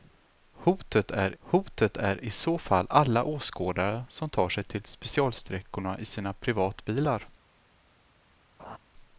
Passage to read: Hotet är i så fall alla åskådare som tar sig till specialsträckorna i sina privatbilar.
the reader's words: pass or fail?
fail